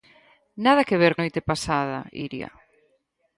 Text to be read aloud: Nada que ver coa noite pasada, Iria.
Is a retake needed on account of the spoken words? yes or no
yes